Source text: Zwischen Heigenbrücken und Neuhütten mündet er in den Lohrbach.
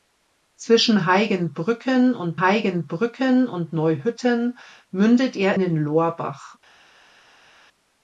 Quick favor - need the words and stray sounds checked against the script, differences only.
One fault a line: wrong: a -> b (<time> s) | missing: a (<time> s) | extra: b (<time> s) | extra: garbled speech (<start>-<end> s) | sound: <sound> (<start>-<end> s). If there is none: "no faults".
extra: Heigenbrücken und (2.4 s)
missing: in (5.6 s)